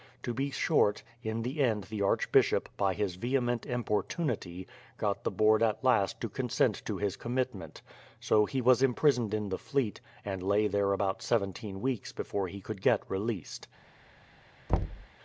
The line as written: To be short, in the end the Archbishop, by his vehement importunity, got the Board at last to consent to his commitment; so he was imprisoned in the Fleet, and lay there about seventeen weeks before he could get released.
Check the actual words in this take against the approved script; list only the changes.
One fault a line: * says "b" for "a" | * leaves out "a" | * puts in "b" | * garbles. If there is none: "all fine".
all fine